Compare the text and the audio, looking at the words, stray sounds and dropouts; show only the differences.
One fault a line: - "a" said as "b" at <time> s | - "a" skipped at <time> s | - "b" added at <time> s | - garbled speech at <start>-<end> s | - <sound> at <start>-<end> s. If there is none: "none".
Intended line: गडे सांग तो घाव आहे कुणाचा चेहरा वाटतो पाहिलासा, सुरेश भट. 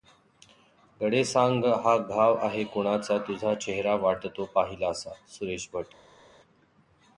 - "तो" said as "हा" at 1.8 s
- "तुझा" added at 3.2 s